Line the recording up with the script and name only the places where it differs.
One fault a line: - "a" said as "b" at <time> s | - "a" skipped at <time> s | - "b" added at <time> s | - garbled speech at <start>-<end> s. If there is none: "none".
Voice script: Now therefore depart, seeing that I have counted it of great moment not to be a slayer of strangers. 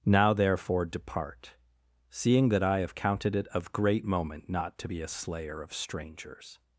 none